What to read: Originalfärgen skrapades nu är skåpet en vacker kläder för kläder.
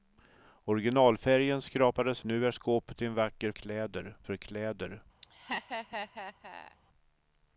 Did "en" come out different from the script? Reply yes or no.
no